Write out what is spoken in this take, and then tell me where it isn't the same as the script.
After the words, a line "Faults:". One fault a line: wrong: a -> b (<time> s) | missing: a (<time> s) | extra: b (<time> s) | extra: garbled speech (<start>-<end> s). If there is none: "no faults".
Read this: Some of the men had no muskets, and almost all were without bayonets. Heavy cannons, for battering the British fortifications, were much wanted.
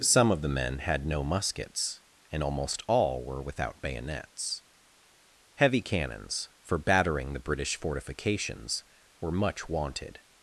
Some of the men had no muskets, and almost all were without bayonets. Heavy cannons, for battering the British fortifications, were much wanted.
Faults:
no faults